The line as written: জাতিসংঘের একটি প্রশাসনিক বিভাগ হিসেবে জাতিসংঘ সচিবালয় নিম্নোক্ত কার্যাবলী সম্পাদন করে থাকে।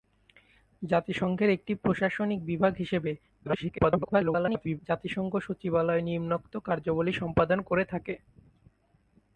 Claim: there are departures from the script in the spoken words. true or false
true